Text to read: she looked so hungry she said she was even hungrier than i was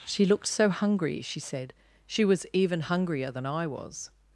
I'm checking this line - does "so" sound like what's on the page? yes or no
yes